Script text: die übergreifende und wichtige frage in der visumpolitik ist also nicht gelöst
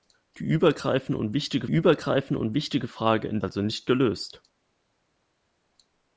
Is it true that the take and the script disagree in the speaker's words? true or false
true